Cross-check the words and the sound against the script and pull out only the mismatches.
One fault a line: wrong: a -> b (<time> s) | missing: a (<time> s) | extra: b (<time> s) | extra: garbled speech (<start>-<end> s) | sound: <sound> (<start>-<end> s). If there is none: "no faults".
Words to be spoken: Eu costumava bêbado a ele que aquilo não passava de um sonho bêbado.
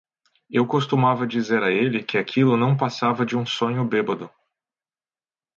wrong: bêbado -> dizer (1.3 s)